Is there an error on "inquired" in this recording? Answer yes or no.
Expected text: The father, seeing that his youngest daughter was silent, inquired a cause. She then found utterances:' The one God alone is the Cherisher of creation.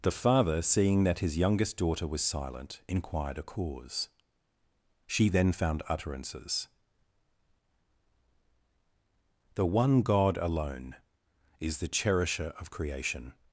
no